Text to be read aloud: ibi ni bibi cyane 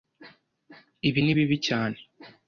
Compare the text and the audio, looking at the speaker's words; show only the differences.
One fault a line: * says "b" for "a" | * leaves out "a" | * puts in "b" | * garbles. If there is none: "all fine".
all fine